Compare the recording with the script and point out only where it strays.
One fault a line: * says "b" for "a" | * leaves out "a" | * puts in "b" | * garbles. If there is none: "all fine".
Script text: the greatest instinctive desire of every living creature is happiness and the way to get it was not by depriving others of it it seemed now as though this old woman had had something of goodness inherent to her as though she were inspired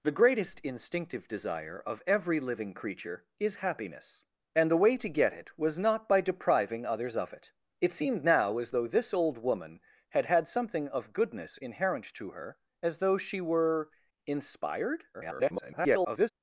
* garbles